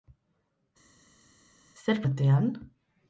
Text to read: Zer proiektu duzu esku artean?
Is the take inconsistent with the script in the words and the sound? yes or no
yes